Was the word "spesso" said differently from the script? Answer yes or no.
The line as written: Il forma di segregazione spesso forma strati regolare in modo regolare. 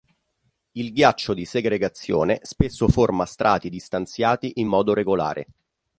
no